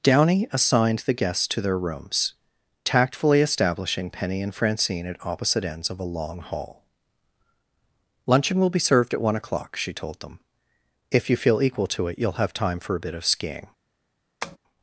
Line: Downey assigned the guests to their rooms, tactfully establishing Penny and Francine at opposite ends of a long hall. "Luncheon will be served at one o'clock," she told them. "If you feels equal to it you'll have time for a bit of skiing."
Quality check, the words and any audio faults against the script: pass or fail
fail